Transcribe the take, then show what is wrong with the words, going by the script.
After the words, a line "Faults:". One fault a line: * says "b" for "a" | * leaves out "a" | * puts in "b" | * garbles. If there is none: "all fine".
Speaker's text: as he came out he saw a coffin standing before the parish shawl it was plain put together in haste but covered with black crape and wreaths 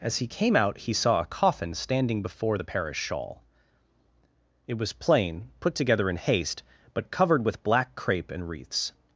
as he came out he saw a coffin standing before the parish shawl it was plain put together in haste but covered with black crape and wreaths
Faults:
all fine